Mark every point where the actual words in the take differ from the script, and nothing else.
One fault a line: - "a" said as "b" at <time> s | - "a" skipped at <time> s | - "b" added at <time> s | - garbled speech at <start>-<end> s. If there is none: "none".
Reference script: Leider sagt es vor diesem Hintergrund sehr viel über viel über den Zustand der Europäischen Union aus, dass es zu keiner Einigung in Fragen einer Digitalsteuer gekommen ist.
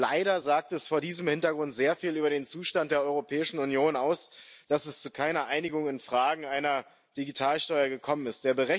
- "viel über" skipped at 2.3 s